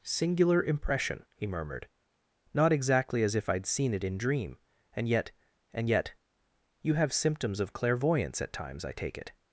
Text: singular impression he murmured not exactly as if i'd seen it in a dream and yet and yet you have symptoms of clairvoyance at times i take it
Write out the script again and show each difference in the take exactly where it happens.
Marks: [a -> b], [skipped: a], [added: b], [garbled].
singular impression he murmured not exactly as if i'd seen it in [skipped: a] dream and yet and yet you have symptoms of clairvoyance at times i take it